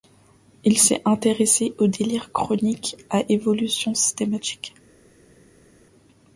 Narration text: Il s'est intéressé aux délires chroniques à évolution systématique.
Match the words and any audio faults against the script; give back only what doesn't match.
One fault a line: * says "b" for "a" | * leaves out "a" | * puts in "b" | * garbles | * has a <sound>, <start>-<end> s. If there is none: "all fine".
all fine